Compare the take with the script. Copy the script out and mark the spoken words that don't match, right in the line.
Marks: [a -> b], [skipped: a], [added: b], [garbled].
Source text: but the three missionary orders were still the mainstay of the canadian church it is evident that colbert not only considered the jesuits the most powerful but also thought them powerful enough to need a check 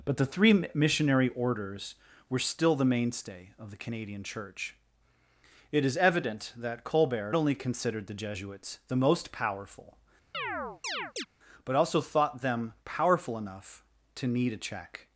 but the three missionary orders were still the mainstay of the canadian church it is evident that colbert [skipped: not] only considered the jesuits the most powerful but also thought them powerful enough to need a check